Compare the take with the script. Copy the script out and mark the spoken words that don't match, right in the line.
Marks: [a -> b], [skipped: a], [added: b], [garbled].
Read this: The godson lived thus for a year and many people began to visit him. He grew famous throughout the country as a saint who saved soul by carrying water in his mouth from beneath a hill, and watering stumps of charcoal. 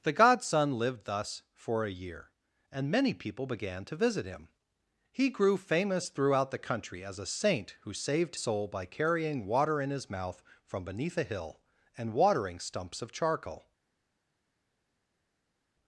The godson lived thus for a year and many people began to visit him. He grew famous throughout the country as a saint who saved soul by carrying water in his mouth from beneath a hill, and watering stumps of charcoal.